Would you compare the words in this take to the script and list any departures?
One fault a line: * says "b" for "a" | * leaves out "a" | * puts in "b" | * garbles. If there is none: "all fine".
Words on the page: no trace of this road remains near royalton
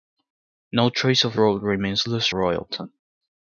* leaves out "this"
* says "this" for "near"